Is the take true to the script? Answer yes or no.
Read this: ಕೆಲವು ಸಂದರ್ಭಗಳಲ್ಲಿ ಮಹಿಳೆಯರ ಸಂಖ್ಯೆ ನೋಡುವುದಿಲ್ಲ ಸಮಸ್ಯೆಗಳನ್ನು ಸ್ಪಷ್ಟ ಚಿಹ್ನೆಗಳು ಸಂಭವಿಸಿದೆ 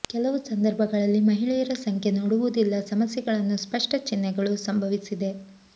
yes